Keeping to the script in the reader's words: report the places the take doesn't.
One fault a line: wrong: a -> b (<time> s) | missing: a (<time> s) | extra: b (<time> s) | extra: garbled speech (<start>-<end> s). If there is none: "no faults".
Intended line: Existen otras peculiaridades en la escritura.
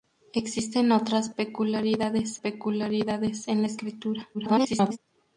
extra: peculiaridades (2.3 s)
extra: garbled speech (4.3-5.0 s)